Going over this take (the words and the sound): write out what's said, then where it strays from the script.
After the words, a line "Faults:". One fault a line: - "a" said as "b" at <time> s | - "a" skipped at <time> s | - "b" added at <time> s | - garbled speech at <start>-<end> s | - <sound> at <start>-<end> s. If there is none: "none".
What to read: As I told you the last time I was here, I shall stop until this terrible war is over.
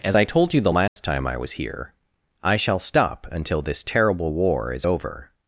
As I told you the last time I was here, I shall stop until this terrible war is over.
Faults:
- dropout at 0.9-1.0 s